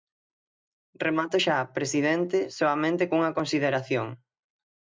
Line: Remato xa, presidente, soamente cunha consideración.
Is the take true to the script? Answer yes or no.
yes